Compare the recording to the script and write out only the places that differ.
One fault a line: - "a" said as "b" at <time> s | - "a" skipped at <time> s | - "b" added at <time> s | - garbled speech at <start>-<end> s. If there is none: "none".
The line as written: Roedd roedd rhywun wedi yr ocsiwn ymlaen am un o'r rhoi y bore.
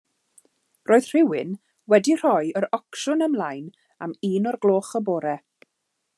- "roedd" skipped at 1.1 s
- "rhoi" added at 2.2 s
- "rhoi" said as "gloch" at 4.7 s